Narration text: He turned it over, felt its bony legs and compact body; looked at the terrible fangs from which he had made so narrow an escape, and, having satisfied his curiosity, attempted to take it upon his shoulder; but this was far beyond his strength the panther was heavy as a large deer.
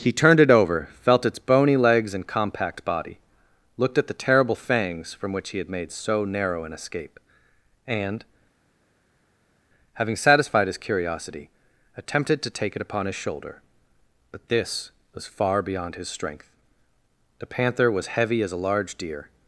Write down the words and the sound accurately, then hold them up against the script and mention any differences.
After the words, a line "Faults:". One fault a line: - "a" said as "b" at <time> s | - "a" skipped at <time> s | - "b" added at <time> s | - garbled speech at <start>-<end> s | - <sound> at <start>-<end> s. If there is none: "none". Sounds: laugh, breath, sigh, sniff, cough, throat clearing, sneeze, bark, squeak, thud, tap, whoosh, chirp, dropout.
He turned it over, felt its bony legs and compact body; looked at the terrible fangs from which he had made so narrow an escape, and, having satisfied his curiosity, attempted to take it upon his shoulder; but this was far beyond his strength the panther was heavy as a large deer.
Faults:
none